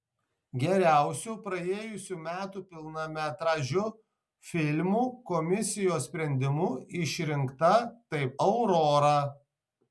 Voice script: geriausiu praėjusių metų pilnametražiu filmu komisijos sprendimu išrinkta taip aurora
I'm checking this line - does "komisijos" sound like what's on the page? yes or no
yes